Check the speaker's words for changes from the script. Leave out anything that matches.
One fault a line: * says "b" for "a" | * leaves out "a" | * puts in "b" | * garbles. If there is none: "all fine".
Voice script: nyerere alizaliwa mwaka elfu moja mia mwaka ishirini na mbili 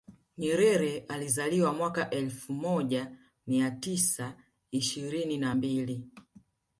* says "tisa" for "mwaka"